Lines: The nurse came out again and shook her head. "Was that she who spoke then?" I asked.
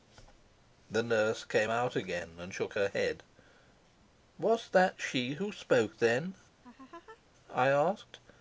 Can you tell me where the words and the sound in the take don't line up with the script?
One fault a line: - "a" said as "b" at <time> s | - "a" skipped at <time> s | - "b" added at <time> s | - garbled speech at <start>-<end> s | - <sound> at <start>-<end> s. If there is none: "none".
- laugh at 6.6-7.2 s